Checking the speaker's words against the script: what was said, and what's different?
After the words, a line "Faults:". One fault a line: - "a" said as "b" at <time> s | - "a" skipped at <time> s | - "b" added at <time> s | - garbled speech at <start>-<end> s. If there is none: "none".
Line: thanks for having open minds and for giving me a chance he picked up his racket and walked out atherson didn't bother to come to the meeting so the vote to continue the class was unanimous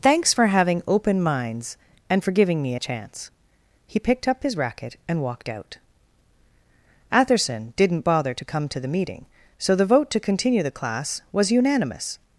thanks for having open minds and for giving me a chance he picked up his racket and walked out atherson didn't bother to come to the meeting so the vote to continue the class was unanimous
Faults:
none